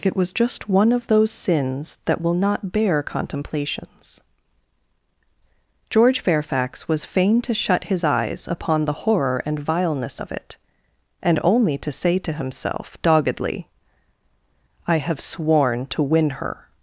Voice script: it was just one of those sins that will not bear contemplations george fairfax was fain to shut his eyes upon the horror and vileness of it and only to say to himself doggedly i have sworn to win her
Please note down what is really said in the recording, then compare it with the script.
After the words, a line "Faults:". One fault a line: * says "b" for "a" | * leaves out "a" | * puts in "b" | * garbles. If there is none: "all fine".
it was just one of those sins that will not bear contemplations george fairfax was fain to shut his eyes upon the horror and vileness of it and only to say to himself doggedly i have sworn to win her
Faults:
all fine